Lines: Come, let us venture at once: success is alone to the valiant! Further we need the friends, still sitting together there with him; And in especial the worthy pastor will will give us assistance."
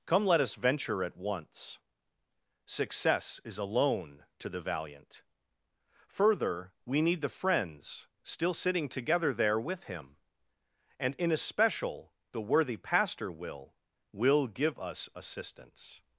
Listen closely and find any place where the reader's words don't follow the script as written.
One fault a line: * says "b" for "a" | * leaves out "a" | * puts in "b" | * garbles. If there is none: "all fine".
all fine